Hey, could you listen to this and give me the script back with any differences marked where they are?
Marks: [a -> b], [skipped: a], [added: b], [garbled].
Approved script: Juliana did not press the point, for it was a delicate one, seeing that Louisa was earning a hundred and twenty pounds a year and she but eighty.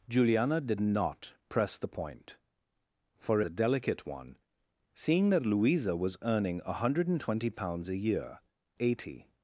Juliana did not press the point, for [skipped: it was] a delicate one, seeing that Louisa was earning a hundred and twenty pounds a year [skipped: and she but] eighty.